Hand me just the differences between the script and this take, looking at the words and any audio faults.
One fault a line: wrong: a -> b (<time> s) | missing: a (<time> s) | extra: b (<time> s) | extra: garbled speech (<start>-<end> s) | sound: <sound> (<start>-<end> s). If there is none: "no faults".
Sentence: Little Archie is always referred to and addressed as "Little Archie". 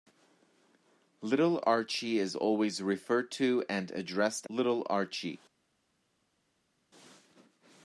missing: as (4.5 s)